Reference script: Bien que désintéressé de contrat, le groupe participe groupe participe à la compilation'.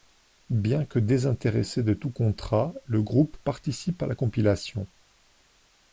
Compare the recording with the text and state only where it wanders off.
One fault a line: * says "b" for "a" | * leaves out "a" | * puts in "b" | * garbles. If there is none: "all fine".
* puts in "tout"
* leaves out "groupe participe"